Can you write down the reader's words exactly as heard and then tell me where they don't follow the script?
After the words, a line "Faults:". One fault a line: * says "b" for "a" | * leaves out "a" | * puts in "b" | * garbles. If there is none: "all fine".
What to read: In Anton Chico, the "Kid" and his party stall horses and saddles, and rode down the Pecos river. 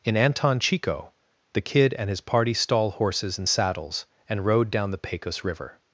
In Anton Chico, the "Kid" and his party stall horses and saddles, and rode down the Pecos river.
Faults:
all fine